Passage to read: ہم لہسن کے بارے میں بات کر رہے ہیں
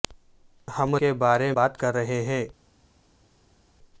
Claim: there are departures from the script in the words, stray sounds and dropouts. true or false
true